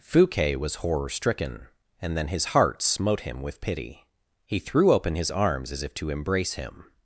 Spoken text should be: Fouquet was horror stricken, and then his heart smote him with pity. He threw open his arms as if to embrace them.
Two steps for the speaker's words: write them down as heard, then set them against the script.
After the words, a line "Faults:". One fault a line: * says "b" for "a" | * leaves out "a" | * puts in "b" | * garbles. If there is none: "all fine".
Fouquet was horror stricken, and then his heart smote him with pity. He threw open his arms as if to embrace him.
Faults:
* says "him" for "them"